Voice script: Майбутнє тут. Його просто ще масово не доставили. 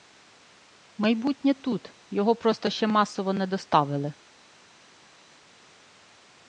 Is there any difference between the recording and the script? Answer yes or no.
no